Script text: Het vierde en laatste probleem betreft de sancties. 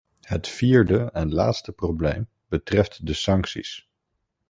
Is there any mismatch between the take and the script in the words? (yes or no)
no